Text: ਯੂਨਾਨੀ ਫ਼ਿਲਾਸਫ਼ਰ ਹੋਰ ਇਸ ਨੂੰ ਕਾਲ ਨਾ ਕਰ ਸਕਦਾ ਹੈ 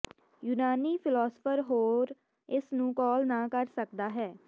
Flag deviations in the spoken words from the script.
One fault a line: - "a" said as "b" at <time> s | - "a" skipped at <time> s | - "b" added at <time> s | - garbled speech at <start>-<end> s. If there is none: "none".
none